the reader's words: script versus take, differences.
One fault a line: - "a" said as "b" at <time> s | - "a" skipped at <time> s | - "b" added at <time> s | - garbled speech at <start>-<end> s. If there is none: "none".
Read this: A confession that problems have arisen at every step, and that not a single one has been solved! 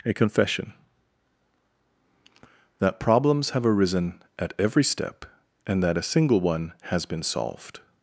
- "not" skipped at 6.0 s